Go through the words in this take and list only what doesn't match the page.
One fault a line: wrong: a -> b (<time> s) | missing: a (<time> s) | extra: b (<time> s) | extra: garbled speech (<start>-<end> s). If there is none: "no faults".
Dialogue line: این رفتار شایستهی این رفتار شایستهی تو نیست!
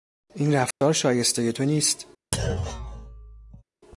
missing: این رفتار شایستهی (1.5 s)